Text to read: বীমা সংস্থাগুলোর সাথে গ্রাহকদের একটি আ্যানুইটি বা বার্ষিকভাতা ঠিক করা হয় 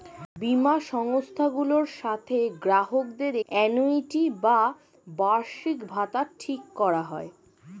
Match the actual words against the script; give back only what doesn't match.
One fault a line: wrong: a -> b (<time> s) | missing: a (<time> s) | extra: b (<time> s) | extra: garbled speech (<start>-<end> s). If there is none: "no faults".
missing: একটি (3.3 s)